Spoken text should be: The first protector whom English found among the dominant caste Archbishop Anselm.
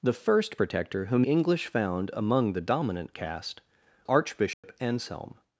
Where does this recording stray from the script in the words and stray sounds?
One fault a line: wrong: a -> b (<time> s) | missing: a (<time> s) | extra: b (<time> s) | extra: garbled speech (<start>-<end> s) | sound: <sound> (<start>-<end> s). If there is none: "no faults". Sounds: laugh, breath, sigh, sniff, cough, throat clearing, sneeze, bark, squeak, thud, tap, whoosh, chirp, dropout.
sound: dropout (4.5-4.6 s)